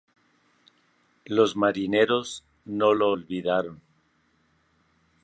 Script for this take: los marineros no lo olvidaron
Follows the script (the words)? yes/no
yes